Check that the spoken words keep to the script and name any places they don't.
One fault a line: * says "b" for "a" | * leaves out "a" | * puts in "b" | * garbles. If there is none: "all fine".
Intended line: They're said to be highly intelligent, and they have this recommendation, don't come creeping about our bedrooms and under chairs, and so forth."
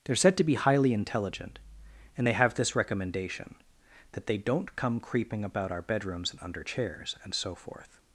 * puts in "that they"